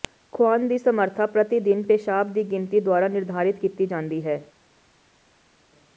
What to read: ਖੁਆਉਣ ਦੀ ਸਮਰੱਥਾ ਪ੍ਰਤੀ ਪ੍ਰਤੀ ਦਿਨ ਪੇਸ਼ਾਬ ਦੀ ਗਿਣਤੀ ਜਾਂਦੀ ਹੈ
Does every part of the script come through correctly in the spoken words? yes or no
no